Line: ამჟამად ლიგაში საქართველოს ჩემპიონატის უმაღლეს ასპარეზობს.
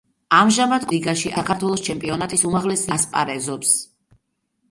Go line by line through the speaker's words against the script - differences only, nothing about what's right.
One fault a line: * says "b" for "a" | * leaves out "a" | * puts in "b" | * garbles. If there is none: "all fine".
all fine